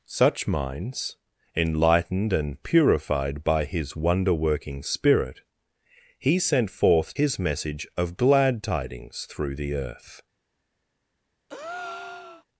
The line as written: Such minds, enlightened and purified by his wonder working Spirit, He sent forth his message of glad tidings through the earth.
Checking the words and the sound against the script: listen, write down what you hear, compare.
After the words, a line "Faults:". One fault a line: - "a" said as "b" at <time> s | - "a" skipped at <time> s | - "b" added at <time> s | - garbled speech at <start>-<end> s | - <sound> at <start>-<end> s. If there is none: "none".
Such minds, enlightened and purified by his wonder working Spirit, He sent forth his message of glad tidings through the earth.
Faults:
- breath at 11.5-12.4 s